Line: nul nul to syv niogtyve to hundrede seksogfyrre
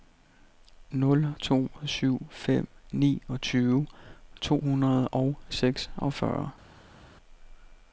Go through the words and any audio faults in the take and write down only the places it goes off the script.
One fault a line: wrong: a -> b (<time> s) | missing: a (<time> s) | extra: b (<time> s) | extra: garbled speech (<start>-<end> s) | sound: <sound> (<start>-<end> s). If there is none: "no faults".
missing: nul (1.4 s)
extra: fem (2.3 s)
extra: og (5.1 s)